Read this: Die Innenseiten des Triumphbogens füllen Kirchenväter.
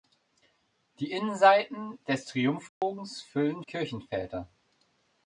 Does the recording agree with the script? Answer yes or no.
yes